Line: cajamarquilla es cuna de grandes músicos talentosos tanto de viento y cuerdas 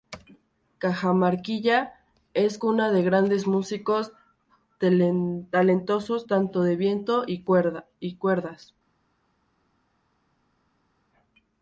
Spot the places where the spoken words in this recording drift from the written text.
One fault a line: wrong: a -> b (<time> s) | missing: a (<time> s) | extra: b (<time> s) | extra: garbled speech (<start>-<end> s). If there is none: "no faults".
no faults